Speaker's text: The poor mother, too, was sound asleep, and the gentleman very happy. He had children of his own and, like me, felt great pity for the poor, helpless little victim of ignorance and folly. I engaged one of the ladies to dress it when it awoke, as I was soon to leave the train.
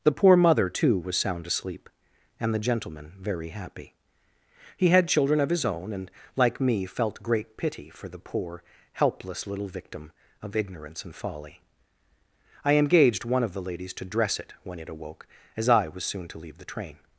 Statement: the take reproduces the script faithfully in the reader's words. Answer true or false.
true